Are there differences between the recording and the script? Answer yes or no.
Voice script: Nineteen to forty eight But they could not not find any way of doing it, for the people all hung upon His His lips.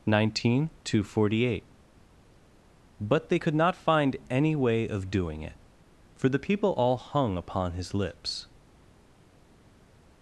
yes